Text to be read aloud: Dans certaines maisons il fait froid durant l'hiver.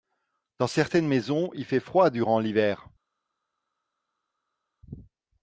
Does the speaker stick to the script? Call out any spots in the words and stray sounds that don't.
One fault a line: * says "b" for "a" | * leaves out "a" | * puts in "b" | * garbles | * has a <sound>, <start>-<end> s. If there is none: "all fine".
all fine